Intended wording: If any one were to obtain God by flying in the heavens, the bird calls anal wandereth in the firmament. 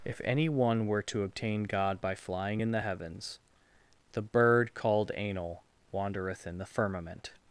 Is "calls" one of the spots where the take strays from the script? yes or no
yes